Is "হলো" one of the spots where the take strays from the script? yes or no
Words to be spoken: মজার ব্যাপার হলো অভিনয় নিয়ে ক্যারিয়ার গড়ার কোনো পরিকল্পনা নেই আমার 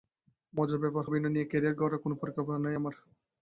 yes